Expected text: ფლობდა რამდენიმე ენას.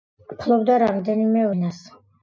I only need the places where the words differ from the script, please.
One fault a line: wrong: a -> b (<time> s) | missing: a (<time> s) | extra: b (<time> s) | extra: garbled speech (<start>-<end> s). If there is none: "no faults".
no faults